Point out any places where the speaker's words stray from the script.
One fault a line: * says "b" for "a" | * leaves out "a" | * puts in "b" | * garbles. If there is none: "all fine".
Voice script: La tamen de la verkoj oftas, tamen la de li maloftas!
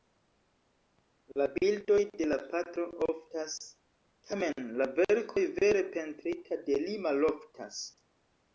* says "bildoj" for "tamen"
* says "patro" for "verkoj"
* puts in "verkoj vere pentrita"